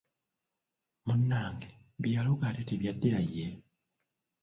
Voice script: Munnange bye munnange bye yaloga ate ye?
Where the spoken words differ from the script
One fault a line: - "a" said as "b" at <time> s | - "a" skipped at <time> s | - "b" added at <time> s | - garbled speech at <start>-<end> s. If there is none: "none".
- "munnange bye" skipped at 2.1 s
- "tebyaddira" added at 2.7 s